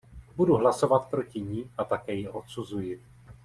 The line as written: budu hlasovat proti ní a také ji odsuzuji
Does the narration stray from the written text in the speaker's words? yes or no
no